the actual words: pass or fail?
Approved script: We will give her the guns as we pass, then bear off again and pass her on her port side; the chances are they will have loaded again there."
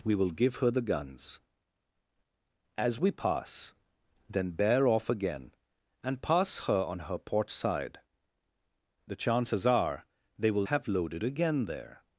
pass